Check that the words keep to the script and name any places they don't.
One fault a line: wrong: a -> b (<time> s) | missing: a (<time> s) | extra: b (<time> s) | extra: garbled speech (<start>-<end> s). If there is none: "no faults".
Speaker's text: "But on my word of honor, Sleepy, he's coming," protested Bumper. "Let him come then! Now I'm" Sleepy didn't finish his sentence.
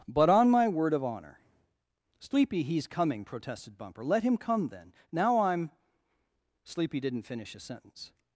no faults